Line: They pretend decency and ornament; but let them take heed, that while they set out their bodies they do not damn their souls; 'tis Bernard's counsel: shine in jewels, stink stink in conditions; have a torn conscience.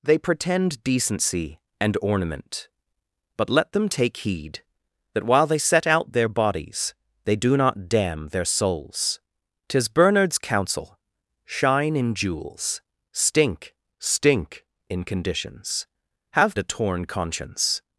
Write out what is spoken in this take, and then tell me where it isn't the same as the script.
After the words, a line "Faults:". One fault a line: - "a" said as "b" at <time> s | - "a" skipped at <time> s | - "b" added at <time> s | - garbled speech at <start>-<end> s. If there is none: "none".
They pretend decency and ornament; but let them take heed, that while they set out their bodies they do not damn their souls; 'tis Bernard's counsel: shine in jewels, stink stink in conditions; have a torn conscience.
Faults:
none